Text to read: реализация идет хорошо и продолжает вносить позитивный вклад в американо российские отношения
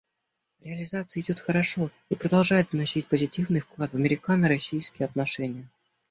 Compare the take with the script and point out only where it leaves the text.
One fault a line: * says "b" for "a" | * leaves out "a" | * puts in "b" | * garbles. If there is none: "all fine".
all fine